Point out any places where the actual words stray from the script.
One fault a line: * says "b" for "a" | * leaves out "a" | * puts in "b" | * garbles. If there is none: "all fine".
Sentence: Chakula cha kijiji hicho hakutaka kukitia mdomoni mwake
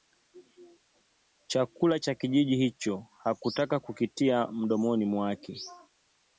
all fine